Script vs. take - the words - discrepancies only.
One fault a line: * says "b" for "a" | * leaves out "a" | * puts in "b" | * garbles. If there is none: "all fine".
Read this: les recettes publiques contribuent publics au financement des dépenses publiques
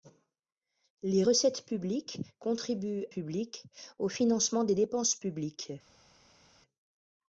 all fine